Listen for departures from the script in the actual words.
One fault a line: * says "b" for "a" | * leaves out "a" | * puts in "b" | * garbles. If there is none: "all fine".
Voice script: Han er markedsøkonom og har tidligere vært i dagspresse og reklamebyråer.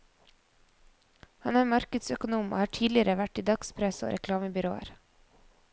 all fine